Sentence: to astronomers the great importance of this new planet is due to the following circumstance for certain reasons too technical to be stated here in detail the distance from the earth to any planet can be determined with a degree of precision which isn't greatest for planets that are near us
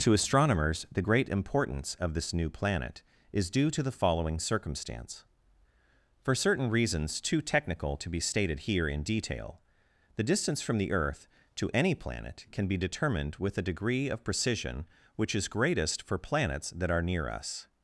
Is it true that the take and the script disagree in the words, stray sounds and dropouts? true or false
true